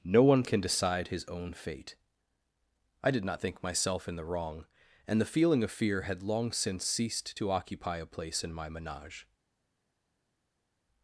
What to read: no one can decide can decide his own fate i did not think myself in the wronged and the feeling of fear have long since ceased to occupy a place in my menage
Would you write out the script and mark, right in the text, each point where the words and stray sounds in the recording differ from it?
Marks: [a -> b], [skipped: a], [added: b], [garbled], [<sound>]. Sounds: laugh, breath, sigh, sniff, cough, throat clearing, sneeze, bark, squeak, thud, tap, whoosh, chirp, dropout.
no one can decide [skipped: can decide] his own fate i did not think myself in the [wronged -> wrong] and the feeling of fear [have -> had] long since ceased to occupy a place in my menage